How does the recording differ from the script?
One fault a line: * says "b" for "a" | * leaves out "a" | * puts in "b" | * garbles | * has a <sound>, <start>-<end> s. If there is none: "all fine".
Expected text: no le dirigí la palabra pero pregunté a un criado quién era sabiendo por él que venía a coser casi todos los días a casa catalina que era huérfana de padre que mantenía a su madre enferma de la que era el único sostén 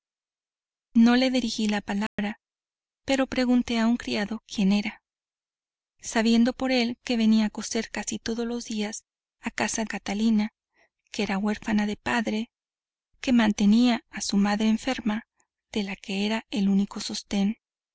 * has a dropout, 2.1-2.2 s